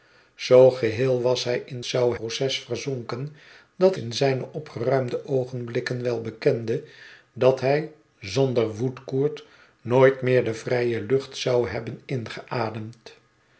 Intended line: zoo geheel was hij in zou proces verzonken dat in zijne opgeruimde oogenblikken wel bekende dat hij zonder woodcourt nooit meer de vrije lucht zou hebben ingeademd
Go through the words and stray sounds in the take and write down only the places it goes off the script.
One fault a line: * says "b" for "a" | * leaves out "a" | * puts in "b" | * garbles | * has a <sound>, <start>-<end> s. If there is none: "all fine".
all fine